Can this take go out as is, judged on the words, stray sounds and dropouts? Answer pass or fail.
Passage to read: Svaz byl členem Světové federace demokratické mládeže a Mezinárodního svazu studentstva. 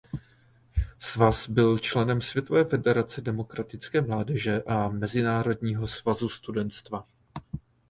pass